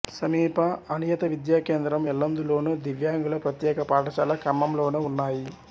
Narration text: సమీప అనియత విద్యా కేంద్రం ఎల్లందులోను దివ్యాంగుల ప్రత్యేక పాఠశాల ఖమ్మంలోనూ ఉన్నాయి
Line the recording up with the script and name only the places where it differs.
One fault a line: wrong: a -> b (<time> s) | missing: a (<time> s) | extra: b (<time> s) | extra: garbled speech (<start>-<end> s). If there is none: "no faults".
no faults